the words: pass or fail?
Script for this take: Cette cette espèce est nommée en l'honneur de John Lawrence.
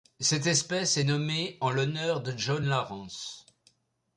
fail